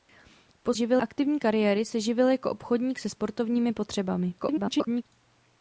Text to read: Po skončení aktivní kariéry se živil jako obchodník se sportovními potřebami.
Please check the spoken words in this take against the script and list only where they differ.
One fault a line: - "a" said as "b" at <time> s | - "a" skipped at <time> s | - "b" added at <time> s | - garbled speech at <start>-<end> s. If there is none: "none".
- "skončení" said as "živil" at 0.7 s
- garbled speech at 4.4-5.0 s